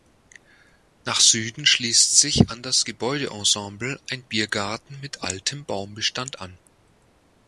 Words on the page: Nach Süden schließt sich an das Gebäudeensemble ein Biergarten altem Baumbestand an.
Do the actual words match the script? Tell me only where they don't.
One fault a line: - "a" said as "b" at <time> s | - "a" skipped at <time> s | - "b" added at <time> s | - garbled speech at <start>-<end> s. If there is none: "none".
- "mit" added at 5.0 s